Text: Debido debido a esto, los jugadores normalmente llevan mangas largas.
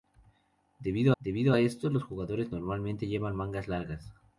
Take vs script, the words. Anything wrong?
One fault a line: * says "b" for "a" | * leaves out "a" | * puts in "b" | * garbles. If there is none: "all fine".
all fine